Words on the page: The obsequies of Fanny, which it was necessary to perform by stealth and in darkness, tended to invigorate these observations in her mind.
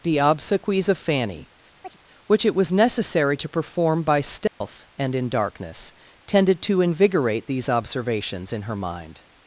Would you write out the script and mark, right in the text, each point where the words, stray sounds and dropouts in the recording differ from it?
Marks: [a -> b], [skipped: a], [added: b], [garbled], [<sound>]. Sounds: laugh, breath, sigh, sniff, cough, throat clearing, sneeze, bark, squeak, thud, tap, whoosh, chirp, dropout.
The obsequies of Fanny, [chirp] which it was necessary to perform by stealth [dropout] and in darkness, tended to invigorate these observations in her mind.